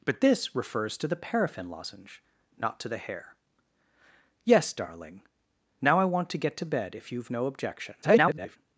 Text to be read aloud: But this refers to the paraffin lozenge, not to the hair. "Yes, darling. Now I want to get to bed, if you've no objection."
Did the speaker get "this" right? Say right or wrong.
right